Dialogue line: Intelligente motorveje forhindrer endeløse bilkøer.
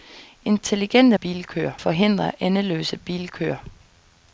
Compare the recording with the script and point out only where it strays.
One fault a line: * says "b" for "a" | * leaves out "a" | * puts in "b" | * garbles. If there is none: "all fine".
* says "bilkøer" for "motorveje"